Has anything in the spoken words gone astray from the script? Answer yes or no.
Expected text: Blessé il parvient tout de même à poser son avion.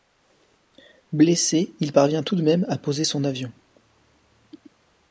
no